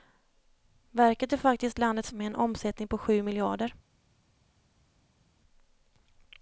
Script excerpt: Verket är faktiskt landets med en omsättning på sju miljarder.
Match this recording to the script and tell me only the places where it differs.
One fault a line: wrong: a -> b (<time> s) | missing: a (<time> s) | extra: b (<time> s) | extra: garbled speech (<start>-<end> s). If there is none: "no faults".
no faults